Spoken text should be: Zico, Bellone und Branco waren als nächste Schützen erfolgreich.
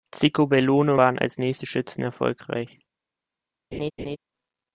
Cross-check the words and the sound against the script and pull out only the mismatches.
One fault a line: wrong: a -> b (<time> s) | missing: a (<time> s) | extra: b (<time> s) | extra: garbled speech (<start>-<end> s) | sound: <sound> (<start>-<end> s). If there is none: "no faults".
missing: und Branco (0.9 s)
sound: laugh (3.7-4.2 s)